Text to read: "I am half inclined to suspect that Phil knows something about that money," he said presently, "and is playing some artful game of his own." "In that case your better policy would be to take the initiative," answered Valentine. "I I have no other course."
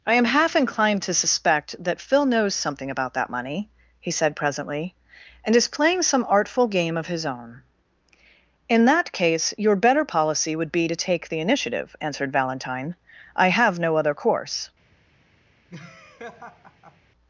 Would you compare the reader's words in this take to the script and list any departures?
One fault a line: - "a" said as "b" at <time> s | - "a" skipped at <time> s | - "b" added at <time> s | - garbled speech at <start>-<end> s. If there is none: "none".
- "I" skipped at 13.5 s